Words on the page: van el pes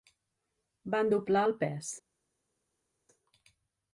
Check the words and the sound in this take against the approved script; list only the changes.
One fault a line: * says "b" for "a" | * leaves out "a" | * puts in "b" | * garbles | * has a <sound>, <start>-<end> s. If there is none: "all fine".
* puts in "doblar"